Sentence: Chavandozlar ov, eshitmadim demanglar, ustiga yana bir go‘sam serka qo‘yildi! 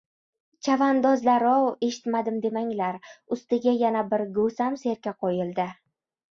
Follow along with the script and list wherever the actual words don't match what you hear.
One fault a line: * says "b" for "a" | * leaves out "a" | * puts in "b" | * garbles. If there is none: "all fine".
all fine